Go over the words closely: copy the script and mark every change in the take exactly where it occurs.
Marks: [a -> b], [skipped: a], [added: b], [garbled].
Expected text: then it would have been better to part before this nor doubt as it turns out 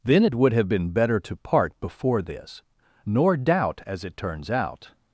then it would have been better to part before this nor doubt as it turns out